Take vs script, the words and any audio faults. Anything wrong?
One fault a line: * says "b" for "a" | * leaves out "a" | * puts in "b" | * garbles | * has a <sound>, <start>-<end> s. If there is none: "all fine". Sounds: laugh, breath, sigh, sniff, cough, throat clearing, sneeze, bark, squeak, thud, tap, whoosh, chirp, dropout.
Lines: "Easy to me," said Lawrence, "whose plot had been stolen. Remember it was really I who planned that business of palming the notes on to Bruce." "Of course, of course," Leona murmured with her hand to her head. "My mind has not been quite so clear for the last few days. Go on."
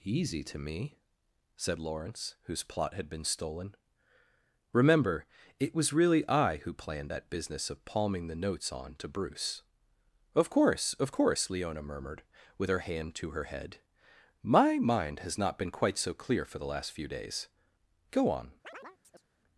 * has a chirp, 18.6-19.2 s